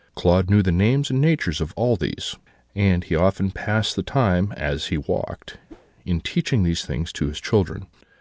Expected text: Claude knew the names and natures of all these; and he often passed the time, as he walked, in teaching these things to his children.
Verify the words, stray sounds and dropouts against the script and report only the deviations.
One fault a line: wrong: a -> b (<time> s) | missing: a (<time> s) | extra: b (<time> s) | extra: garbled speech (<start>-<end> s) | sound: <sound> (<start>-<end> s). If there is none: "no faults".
sound: whoosh (5.7-5.9 s)